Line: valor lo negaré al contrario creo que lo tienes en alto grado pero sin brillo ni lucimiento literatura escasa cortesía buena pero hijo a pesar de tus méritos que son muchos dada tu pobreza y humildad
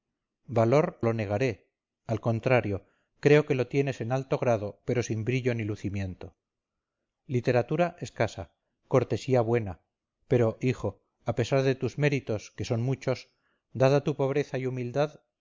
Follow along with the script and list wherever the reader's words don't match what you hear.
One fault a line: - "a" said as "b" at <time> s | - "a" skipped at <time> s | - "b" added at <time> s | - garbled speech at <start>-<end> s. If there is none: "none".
none